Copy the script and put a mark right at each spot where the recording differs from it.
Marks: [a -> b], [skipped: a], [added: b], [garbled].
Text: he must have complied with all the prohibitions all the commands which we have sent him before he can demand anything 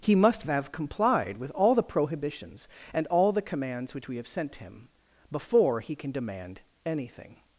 he must have complied with all the prohibitions [added: and] all the commands which we have sent him before he can demand anything